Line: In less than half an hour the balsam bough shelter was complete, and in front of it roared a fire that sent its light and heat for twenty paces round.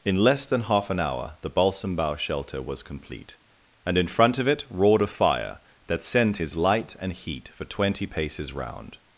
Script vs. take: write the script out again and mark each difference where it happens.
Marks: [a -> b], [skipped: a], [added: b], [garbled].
In less than half an hour the balsam bough shelter was complete, and in front of it roared a fire that sent [its -> his] light and heat for twenty paces round.